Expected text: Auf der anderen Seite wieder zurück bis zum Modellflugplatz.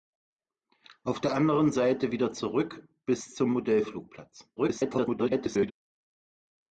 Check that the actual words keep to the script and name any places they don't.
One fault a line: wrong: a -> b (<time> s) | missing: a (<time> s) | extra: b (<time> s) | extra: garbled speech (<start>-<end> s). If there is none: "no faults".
extra: garbled speech (4.6-5.7 s)